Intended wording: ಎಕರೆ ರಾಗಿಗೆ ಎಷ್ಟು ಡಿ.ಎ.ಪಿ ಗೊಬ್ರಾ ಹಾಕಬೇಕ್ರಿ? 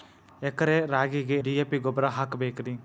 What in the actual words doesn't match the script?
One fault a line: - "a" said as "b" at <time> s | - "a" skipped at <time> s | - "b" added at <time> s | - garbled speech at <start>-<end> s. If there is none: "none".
- "ಎಷ್ಟು" skipped at 1.4 s